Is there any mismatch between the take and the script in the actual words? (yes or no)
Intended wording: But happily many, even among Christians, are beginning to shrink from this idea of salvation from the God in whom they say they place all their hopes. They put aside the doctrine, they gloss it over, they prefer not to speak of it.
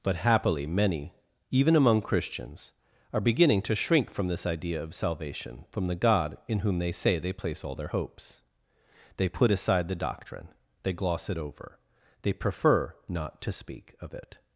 no